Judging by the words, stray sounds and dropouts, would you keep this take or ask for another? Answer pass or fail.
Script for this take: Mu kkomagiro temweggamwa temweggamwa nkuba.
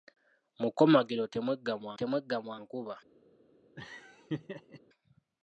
fail